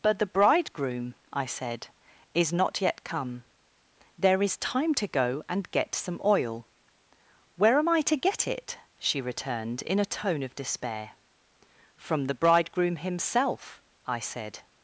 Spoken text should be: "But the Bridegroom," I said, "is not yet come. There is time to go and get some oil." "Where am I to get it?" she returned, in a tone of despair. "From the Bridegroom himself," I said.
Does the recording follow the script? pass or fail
pass